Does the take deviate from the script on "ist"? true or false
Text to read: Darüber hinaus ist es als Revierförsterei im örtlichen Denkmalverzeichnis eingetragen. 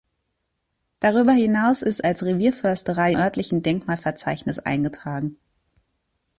true